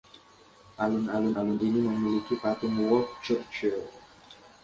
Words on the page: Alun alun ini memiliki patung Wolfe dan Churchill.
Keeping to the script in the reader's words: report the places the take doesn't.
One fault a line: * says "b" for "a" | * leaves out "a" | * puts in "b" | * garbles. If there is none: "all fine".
* puts in "alun"
* leaves out "dan"